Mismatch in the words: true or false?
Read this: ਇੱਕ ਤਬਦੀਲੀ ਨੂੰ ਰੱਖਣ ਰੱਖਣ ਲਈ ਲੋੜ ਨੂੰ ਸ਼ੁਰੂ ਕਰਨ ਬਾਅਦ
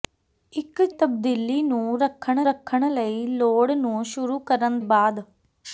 false